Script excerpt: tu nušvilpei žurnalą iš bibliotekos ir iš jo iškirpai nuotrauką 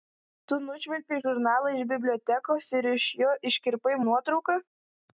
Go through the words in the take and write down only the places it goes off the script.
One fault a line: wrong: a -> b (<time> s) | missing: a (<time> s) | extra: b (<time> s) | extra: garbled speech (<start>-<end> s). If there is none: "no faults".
no faults